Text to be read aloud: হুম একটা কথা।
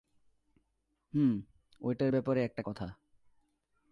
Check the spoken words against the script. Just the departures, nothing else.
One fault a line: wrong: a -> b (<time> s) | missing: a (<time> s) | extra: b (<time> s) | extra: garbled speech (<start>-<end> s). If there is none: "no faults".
extra: ঐটার ব্যাপারে (1.8 s)